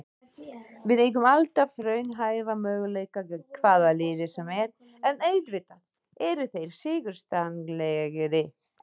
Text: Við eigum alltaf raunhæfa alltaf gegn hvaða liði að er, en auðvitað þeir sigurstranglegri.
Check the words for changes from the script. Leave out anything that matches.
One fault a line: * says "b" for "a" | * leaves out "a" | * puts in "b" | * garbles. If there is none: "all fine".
* says "möguleika" for "alltaf"
* says "sem" for "að"
* puts in "eru"